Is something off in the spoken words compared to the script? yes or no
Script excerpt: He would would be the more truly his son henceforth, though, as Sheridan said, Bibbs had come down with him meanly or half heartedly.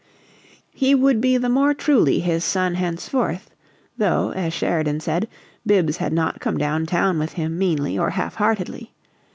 yes